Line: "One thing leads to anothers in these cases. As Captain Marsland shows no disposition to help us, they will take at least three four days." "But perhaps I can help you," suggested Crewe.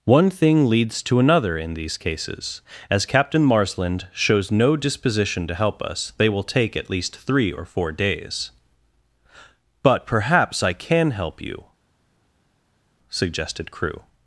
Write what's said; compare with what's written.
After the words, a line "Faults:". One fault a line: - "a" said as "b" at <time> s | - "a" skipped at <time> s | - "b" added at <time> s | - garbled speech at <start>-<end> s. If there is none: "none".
"One thing leads to another in these cases. As Captain Marsland shows no disposition to help us, they will take at least three or four days." "But perhaps I can help you," suggested Crewe.
Faults:
- "anothers" said as "another" at 1.2 s
- "or" added at 7.5 s